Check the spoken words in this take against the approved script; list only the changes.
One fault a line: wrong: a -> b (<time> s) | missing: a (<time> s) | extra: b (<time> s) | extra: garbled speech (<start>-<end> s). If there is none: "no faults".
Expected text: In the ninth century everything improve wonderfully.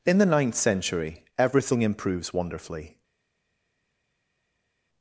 wrong: improve -> improves (1.8 s)